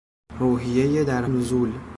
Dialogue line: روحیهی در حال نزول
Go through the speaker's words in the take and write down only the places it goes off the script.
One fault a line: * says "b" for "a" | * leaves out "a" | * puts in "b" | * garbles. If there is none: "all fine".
* leaves out "حال"